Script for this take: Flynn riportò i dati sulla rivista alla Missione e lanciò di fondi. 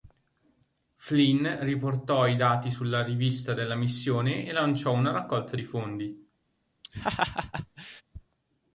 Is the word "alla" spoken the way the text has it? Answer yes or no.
no